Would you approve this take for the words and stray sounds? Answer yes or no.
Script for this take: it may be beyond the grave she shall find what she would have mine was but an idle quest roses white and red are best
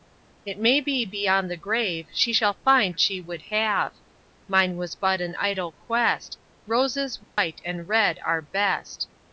no